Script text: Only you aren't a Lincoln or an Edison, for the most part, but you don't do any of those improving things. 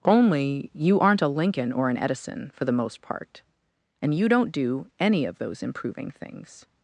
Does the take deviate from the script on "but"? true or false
true